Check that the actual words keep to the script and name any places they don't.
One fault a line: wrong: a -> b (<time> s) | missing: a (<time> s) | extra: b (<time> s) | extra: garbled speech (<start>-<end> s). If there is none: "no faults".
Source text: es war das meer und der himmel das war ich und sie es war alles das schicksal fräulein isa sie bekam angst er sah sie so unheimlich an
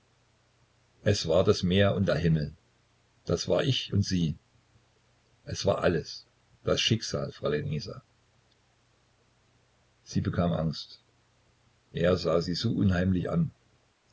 no faults